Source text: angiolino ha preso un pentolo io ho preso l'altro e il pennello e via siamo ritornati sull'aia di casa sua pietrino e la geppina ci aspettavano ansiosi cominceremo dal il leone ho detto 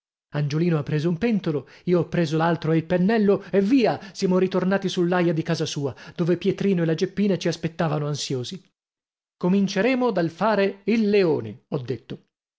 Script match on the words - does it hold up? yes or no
no